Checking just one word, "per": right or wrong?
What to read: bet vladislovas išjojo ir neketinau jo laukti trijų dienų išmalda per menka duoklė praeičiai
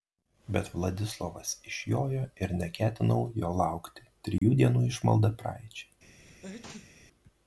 wrong